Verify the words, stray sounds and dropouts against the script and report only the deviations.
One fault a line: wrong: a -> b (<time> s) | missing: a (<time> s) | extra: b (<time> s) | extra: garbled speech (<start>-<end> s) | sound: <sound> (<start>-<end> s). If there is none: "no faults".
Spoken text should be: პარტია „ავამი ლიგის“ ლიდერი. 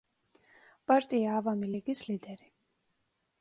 no faults